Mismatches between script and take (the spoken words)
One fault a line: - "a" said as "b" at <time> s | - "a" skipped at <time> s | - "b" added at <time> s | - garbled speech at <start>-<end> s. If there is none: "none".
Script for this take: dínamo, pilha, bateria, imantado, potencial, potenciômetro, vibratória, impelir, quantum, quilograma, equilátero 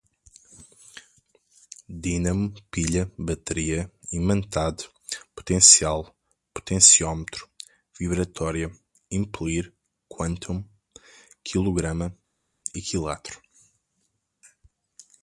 none